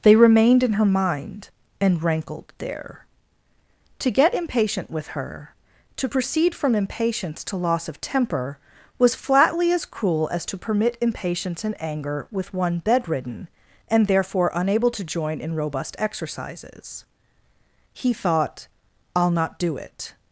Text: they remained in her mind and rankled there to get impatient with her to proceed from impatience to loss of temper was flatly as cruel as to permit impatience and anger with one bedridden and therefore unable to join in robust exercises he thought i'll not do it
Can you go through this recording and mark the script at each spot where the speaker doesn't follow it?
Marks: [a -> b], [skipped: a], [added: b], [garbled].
they remained in her mind and rankled there to get impatient with her to proceed from impatience to loss of temper was flatly as cruel as to permit impatience and anger with one bedridden and therefore unable to join in robust exercises he thought i'll not do it